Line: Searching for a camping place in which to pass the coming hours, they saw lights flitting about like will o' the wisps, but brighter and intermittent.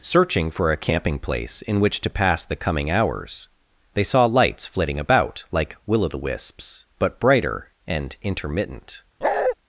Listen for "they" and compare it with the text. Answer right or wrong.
right